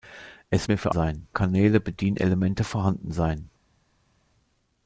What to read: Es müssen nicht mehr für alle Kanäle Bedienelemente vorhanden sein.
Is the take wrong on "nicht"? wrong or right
wrong